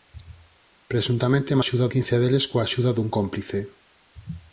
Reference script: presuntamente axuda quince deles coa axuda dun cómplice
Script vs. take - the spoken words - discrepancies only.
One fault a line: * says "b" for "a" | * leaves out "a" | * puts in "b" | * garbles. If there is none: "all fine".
all fine